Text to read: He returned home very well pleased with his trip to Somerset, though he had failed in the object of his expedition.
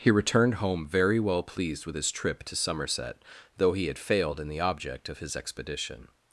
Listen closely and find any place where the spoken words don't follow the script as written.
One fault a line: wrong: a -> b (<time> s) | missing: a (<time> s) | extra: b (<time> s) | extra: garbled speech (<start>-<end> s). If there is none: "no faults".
no faults